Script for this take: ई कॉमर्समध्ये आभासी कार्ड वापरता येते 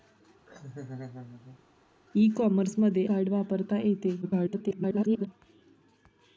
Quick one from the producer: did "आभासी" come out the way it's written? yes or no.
no